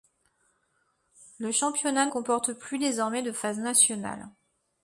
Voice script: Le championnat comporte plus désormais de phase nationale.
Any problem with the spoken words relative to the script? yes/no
no